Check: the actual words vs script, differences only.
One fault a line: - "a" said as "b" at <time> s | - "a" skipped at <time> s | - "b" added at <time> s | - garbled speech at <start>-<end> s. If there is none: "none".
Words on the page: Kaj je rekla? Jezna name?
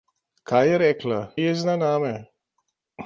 none